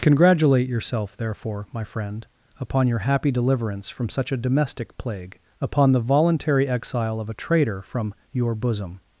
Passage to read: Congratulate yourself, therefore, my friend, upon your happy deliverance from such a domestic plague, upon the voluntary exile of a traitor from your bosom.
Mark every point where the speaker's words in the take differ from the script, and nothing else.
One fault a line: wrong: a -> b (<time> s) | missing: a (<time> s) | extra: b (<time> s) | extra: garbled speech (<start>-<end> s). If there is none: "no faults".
no faults